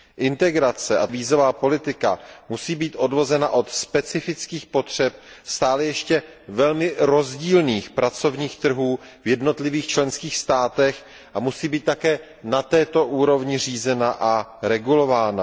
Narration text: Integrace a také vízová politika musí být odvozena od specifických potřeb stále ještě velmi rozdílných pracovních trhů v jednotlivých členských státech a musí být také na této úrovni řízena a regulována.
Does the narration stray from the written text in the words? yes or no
yes